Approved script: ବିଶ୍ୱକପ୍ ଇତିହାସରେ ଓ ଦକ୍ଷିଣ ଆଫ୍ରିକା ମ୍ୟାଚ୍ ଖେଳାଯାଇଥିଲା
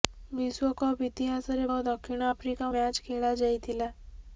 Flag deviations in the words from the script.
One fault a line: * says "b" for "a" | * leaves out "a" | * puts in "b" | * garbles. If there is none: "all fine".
all fine